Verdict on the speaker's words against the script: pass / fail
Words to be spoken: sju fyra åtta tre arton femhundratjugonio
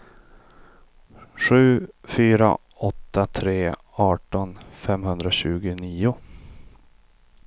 pass